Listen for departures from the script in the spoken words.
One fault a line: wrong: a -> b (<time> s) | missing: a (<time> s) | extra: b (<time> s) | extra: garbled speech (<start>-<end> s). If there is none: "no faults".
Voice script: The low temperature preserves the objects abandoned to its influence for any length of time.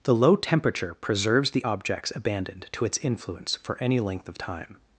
no faults